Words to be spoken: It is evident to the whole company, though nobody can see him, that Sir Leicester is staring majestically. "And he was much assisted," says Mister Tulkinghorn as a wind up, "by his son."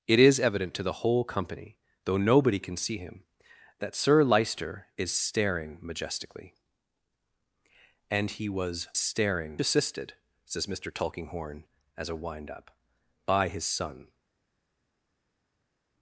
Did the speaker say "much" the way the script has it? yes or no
no